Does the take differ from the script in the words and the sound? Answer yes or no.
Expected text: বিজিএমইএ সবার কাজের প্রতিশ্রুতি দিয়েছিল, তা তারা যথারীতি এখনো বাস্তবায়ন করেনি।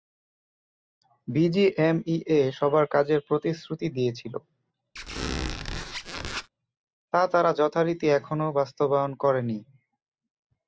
yes